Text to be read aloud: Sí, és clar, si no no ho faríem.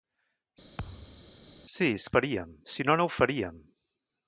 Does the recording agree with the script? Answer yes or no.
no